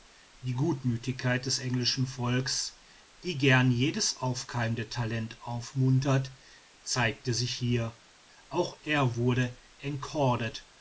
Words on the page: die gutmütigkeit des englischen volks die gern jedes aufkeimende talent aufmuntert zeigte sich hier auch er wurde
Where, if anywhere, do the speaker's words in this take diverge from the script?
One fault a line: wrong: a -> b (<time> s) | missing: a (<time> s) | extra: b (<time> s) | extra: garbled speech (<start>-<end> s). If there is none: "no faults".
no faults